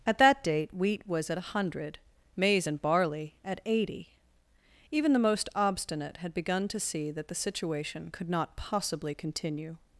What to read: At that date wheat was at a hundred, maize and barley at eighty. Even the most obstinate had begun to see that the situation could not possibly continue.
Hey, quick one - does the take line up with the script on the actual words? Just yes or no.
yes